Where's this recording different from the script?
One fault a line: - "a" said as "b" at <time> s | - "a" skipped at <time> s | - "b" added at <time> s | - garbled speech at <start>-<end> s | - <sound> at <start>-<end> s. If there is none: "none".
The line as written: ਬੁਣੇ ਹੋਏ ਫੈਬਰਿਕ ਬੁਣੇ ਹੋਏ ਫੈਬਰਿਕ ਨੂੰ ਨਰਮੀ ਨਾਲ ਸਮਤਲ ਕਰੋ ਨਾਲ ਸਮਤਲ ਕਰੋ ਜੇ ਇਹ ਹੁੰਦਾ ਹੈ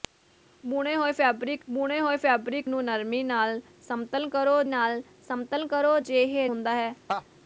- laugh at 7.1-7.2 s